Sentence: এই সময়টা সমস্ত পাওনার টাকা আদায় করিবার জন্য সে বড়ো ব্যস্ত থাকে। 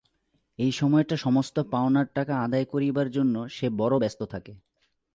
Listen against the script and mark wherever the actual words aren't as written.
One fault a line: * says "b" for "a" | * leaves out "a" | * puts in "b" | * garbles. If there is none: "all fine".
all fine